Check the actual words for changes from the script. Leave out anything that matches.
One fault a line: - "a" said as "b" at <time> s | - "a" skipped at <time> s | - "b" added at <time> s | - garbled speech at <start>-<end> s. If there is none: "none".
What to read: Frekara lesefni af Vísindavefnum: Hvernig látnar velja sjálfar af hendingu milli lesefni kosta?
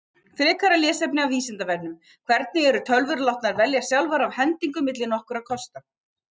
- "eru tölvur" added at 2.7 s
- "lesefni" said as "nokkurra" at 5.2 s